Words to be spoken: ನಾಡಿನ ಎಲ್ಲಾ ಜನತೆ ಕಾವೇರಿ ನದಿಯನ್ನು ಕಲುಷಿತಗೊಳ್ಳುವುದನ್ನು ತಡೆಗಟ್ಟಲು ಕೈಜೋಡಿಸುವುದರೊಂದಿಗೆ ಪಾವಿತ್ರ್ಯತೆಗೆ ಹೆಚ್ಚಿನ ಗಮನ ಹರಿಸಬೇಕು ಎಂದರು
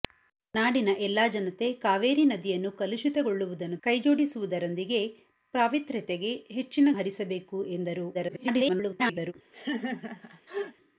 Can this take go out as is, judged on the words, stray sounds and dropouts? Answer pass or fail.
fail